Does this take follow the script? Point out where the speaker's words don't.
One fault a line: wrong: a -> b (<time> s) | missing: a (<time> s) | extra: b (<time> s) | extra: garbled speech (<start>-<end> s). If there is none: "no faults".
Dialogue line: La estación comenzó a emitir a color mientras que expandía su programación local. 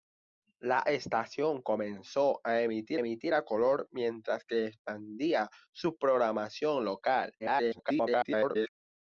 extra: emitir (3.0 s)
extra: garbled speech (7.4-8.7 s)